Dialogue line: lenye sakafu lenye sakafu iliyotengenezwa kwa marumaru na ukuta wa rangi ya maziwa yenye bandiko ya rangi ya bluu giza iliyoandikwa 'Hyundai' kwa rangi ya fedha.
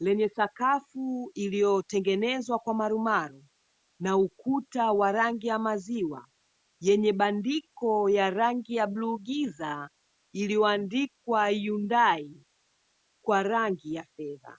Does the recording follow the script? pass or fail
fail